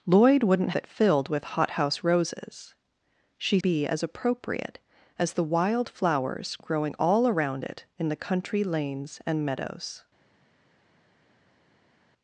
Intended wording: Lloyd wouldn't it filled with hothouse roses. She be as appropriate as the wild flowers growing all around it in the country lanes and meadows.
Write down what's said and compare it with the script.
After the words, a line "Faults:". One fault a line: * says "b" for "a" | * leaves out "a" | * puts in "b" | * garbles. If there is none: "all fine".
Lloyd wouldn't it filled with hothouse roses. She be as appropriate as the wild flowers growing all around it in the country lanes and meadows.
Faults:
all fine